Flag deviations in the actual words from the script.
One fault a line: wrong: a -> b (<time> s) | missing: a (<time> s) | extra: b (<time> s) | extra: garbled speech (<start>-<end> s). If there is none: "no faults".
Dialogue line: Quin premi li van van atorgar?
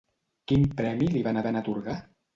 no faults